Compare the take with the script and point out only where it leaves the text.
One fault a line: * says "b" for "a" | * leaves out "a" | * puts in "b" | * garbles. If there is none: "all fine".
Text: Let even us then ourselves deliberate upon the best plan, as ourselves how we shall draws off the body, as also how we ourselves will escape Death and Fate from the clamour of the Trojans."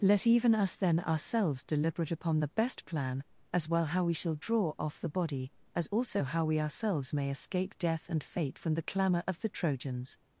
* says "well" for "ourselves"
* says "draw" for "draws"
* says "may" for "will"